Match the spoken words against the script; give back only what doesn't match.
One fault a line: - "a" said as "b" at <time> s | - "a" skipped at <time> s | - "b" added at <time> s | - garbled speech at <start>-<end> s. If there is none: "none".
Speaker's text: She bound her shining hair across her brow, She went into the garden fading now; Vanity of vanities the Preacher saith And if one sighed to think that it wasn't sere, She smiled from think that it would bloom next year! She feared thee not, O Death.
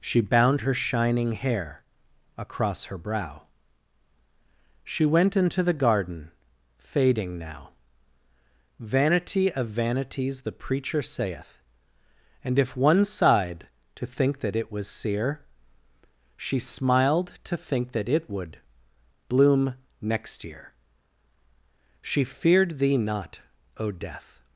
- "wasn't" said as "was" at 14.7 s
- "from" said as "to" at 17.4 s